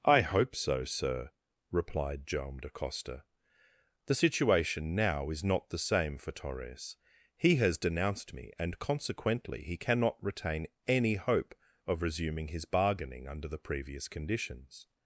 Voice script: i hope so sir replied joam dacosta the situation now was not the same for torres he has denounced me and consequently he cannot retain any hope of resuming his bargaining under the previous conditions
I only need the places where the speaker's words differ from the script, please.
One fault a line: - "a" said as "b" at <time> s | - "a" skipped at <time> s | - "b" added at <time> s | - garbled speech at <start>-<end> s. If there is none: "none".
- "was" said as "is" at 5.3 s